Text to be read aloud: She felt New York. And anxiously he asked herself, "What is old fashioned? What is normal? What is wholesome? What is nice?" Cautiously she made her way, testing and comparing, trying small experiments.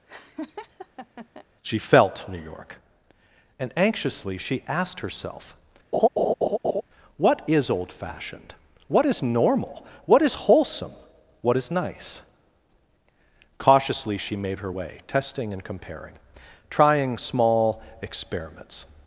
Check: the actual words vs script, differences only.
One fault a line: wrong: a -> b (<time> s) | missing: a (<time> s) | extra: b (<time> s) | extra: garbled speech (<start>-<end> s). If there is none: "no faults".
wrong: he -> she (4.4 s)